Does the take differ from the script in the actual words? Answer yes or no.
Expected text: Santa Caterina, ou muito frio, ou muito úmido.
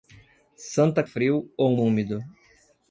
yes